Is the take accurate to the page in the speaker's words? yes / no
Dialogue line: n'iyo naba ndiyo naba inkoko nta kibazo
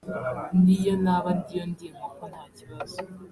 no